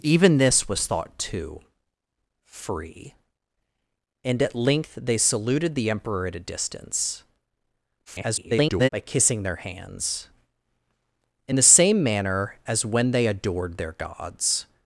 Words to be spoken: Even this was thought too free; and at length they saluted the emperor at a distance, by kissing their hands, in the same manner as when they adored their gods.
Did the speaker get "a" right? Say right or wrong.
right